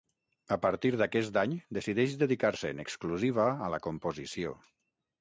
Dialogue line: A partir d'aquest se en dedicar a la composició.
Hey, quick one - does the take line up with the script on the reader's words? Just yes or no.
no